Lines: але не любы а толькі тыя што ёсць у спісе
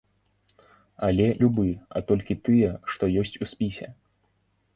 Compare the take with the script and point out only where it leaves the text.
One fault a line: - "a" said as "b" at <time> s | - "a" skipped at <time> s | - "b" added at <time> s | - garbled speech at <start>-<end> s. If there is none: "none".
- "не" skipped at 1.3 s